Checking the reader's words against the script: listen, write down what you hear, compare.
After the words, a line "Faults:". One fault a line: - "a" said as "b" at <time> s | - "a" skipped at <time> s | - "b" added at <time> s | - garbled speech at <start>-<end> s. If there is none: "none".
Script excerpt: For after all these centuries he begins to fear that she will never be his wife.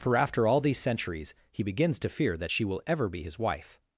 For after all these centuries he begins to fear that she will ever be his wife.
Faults:
- "never" said as "ever" at 2.9 s